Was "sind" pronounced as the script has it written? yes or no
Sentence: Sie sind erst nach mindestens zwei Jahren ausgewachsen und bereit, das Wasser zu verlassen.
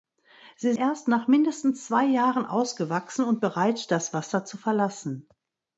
no